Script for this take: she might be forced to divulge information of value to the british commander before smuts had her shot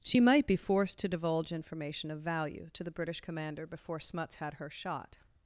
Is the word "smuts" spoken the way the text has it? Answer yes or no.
yes